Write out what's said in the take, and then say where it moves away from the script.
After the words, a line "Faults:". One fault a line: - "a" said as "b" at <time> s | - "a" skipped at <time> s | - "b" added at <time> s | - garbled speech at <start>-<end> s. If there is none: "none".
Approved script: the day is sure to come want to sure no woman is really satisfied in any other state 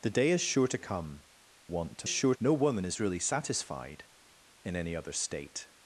the day is sure to come want to sure no woman is really satisfied in any other state
Faults:
none